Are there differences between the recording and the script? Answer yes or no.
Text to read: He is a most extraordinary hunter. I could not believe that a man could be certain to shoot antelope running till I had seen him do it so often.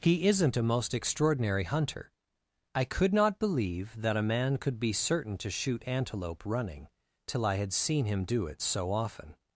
yes